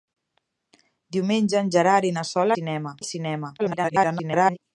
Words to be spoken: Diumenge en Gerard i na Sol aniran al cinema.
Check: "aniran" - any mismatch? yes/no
yes